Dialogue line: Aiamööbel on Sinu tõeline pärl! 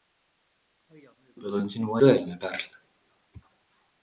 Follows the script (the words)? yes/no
yes